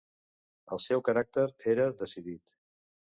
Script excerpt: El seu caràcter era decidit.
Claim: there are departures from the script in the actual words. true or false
false